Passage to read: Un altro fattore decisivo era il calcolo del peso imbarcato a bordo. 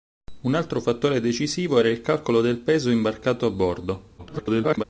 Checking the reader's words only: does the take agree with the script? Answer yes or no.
no